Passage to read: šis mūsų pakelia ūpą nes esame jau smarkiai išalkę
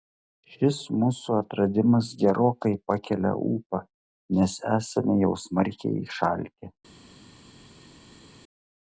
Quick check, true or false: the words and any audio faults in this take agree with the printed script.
false